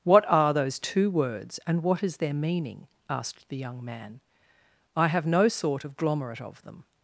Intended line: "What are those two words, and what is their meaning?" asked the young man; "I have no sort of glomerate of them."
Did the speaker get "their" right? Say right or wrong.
right